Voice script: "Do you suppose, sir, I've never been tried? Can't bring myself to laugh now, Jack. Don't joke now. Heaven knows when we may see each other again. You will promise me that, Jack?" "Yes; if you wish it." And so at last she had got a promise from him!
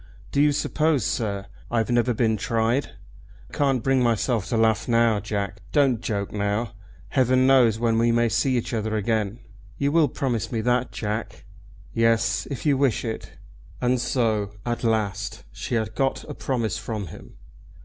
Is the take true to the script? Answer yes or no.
yes